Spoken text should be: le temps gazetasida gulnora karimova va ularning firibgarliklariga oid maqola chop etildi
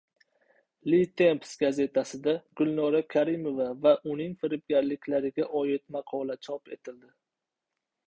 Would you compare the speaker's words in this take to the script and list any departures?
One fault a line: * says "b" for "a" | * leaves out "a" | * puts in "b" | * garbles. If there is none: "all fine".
* says "uning" for "ularning"